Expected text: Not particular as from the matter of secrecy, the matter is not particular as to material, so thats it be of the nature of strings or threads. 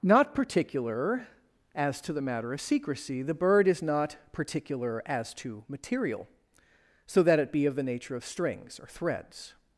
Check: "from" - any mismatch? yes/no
yes